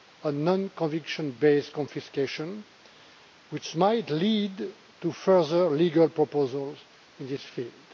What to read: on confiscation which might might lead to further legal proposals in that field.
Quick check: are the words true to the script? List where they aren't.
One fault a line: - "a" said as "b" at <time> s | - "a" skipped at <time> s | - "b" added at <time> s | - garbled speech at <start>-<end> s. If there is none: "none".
- "non conviction based" added at 0.4 s
- "might" skipped at 4.1 s
- "that" said as "this" at 7.3 s